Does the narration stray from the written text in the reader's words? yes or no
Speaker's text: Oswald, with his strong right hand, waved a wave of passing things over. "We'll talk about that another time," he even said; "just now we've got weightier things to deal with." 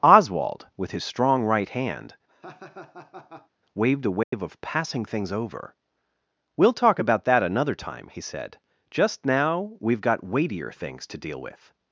yes